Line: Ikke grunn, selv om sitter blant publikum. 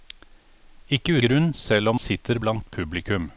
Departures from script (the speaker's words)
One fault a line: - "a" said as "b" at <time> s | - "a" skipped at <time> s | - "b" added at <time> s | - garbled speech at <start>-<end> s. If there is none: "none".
none